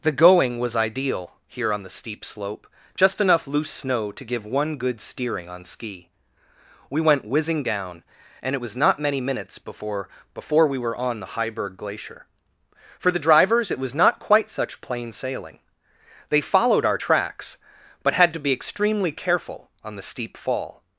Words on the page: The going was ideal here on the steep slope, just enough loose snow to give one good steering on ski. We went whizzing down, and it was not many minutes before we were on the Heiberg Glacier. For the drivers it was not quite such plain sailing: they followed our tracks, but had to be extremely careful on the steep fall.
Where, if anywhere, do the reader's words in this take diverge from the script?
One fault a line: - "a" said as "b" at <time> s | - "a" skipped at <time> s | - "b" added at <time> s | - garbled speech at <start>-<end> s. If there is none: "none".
- "before" added at 10.3 s